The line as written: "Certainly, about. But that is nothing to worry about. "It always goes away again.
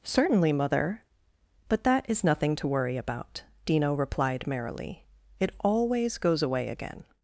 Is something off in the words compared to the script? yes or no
yes